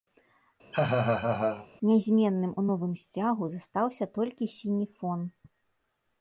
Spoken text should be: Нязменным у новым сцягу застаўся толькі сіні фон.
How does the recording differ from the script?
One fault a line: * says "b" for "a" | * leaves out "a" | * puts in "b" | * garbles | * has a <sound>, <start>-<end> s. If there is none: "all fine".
* has a laugh, 0.7-1.7 s